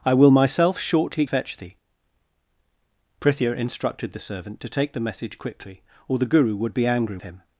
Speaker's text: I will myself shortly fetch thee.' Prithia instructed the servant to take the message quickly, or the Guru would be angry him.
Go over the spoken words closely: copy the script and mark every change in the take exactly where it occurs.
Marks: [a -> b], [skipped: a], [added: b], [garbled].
I will myself shortly fetch thee.' Prithia instructed the servant to take the message quickly, or the Guru would be angry him.